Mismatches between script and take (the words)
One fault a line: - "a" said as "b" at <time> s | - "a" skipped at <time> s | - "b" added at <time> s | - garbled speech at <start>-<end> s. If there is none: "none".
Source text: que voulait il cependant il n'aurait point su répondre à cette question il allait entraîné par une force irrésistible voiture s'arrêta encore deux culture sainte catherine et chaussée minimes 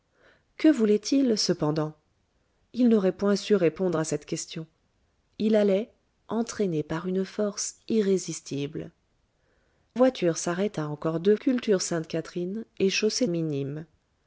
none